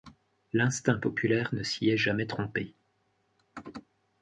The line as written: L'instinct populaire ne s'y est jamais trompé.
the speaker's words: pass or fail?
pass